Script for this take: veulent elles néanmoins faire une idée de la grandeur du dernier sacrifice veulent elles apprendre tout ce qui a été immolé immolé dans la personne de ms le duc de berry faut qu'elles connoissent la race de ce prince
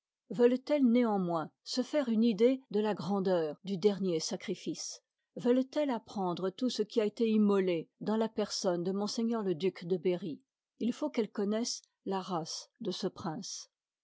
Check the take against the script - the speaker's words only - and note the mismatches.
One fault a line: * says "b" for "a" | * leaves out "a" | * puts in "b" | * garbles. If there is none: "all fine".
* puts in "se"
* leaves out "immolé"
* puts in "il"